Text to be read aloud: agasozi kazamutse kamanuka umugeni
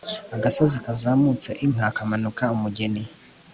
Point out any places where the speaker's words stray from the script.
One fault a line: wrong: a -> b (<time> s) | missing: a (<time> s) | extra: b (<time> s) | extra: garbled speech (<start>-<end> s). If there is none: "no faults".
extra: inka (1.6 s)